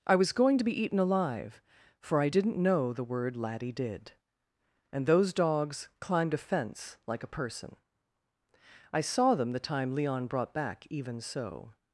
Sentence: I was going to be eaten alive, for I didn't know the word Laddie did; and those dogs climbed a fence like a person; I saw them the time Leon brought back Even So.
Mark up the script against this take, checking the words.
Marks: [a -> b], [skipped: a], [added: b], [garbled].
I was going to be eaten alive, for I didn't know the word Laddie did; and those dogs climbed a fence like a person; I saw them the time Leon brought back Even So.